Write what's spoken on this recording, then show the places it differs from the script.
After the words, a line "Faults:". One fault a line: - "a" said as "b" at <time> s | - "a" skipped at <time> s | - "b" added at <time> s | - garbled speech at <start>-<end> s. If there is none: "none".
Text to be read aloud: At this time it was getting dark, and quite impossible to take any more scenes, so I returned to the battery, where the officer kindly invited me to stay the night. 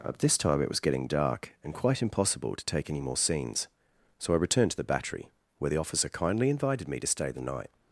At this time it was getting dark, and quite impossible to take any more scenes, so I returned to the battery, where the officer kindly invited me to stay the night.
Faults:
none